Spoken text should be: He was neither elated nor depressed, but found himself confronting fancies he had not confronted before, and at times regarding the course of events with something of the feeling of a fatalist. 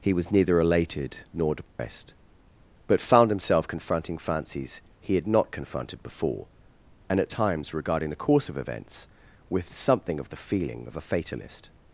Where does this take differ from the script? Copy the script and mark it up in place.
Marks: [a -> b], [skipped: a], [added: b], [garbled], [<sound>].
He was neither elated nor depressed, [dropout] but found himself confronting fancies he had not confronted before, and at times regarding the course of events with something of the feeling of a fatalist.